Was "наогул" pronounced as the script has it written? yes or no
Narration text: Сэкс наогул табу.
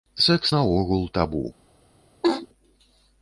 yes